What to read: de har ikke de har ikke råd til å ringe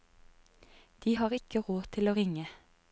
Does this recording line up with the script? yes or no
no